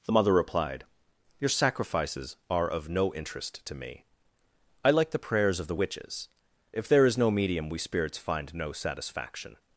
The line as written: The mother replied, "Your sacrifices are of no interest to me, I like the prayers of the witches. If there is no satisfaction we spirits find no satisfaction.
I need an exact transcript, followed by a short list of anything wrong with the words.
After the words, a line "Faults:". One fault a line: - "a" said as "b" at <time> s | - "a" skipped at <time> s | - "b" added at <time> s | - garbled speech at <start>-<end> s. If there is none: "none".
The mother replied, "Your sacrifices are of no interest to me, I like the prayers of the witches. If there is no medium we spirits find no satisfaction.
Faults:
- "satisfaction" said as "medium" at 7.3 s